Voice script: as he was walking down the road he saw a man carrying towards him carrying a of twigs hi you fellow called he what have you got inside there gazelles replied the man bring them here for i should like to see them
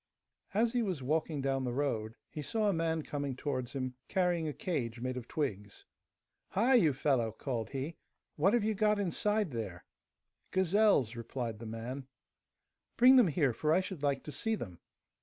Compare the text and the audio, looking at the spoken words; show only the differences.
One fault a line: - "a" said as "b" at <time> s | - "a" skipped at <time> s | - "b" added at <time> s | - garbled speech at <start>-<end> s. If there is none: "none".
- "carrying" said as "coming" at 3.0 s
- "cage made" added at 4.5 s